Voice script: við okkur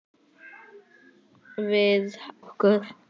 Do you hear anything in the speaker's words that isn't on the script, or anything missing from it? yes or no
no